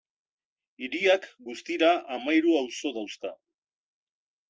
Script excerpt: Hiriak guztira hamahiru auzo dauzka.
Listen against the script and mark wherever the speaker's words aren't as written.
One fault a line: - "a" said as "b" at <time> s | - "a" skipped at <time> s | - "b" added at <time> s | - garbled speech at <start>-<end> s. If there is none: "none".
none